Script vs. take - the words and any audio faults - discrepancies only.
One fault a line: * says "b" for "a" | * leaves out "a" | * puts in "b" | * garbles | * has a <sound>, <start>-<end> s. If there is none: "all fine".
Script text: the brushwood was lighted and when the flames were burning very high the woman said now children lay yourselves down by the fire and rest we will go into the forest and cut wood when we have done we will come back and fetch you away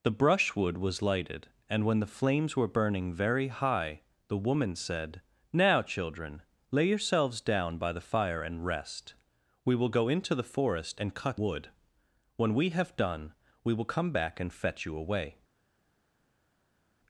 all fine